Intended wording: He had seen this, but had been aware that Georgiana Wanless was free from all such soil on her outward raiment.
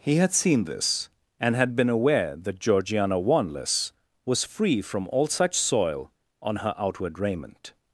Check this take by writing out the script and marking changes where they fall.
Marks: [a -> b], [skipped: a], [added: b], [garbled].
He had seen this, [but -> and] had been aware that Georgiana Wanless was free from all such soil on her outward raiment.